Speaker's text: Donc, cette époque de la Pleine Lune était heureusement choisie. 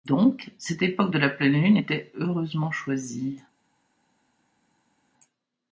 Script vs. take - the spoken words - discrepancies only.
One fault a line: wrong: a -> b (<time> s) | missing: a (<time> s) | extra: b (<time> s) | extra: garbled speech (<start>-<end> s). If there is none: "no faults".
no faults